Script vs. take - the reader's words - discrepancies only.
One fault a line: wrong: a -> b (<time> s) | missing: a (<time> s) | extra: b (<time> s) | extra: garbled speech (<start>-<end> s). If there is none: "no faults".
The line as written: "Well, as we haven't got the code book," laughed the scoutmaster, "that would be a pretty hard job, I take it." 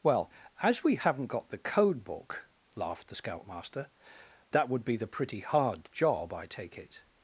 wrong: a -> the (5.0 s)